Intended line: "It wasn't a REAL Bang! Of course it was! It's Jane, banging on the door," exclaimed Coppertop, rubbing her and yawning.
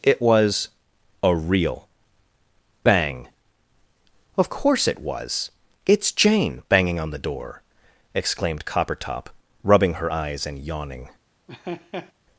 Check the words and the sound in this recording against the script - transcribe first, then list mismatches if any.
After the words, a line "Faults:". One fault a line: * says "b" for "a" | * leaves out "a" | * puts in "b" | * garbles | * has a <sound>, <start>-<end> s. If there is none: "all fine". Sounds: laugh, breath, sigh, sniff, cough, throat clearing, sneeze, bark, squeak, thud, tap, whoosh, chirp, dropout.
"It was a REAL Bang! Of course it was! It's Jane, banging on the door," exclaimed Coppertop, rubbing her eyes and yawning.
Faults:
* says "was" for "wasn't"
* puts in "eyes"
* has a laugh, 11.5-12.1 s